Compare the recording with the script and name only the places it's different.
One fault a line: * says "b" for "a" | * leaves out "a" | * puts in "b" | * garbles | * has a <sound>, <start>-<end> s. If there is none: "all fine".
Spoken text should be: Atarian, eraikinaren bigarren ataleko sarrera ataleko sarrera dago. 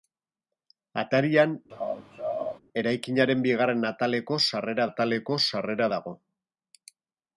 * has a laugh, 1.7-2.6 s